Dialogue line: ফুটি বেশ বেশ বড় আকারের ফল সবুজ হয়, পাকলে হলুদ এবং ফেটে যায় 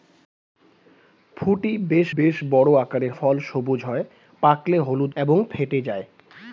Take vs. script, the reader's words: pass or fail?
pass